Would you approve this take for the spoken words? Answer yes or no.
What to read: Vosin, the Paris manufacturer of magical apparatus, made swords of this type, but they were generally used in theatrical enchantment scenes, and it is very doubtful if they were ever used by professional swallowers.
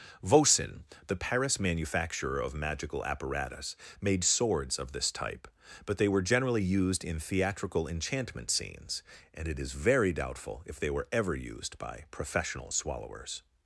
yes